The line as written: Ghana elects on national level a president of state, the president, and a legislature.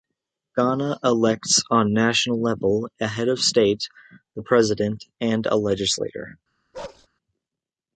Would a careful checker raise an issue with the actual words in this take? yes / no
yes